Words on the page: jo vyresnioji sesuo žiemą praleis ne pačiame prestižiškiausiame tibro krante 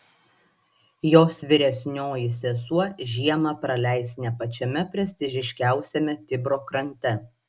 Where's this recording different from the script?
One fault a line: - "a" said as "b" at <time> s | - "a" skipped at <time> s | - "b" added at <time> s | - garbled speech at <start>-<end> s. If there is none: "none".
- "jo" said as "jos" at 1.1 s